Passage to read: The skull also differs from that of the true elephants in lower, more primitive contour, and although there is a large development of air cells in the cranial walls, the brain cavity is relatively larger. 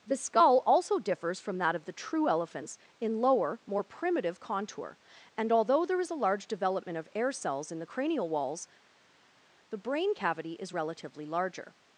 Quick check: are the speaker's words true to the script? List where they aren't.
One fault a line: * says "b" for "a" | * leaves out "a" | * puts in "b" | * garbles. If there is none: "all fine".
all fine